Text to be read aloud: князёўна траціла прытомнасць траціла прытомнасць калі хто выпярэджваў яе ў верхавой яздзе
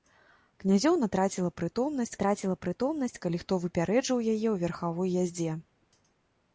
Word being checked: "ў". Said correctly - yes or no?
yes